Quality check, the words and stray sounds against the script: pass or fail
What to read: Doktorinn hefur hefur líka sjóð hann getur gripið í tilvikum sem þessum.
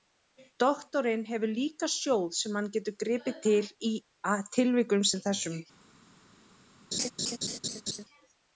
fail